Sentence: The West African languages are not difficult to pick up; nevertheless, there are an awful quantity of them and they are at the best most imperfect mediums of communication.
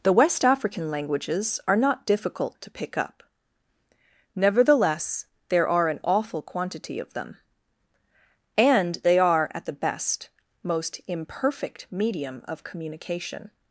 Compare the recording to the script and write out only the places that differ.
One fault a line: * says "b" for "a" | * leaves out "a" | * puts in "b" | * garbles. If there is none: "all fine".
* says "medium" for "mediums"